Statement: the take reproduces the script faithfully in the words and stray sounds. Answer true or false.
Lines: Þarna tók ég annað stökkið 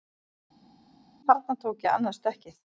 true